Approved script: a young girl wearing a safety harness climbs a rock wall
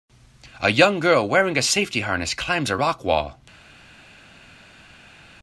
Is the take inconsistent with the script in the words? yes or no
no